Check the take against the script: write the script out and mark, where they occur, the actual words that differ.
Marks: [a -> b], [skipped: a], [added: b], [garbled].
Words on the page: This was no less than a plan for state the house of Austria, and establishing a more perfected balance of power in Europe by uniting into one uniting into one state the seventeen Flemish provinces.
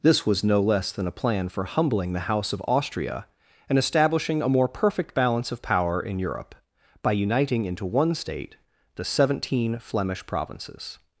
This was no less than a plan for [state -> humbling] the house of Austria, and establishing a more [perfected -> perfect] balance of power in Europe by uniting into one [skipped: uniting into one] state the seventeen Flemish provinces.